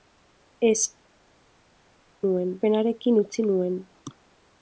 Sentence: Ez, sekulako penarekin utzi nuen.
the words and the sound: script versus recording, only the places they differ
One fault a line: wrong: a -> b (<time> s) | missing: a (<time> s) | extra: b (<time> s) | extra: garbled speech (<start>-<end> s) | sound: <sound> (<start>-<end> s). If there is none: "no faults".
wrong: sekulako -> nuen (2.3 s)